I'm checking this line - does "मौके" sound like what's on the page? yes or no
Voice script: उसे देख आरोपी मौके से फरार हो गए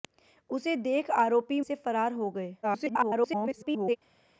no